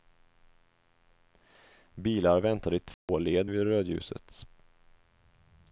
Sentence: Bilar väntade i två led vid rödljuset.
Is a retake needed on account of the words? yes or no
no